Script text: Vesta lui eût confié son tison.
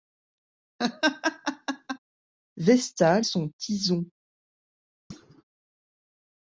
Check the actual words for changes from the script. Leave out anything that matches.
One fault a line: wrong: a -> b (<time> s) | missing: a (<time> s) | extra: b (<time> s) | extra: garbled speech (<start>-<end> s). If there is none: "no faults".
missing: lui eût confié (3.2 s)